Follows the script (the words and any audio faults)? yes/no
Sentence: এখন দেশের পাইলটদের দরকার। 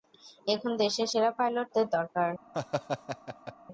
no